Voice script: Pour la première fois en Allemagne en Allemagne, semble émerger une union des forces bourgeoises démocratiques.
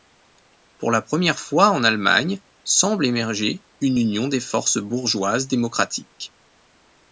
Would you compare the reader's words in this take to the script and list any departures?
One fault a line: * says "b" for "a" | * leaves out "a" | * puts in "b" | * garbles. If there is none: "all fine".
* leaves out "en Allemagne"